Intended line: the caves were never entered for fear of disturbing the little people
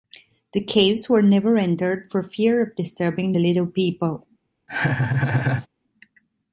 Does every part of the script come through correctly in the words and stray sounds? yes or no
no